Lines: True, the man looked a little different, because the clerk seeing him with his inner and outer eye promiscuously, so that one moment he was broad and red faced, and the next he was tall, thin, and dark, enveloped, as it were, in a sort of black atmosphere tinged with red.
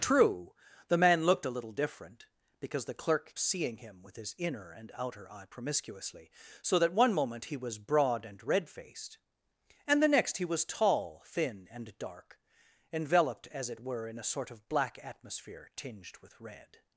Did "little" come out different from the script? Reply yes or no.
no